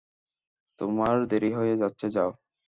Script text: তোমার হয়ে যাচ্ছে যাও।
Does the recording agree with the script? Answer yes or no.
no